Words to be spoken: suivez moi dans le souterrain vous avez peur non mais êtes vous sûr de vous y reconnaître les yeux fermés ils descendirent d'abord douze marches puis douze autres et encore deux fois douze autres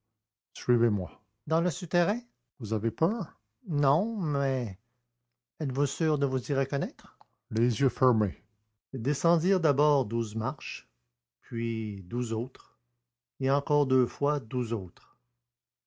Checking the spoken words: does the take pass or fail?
pass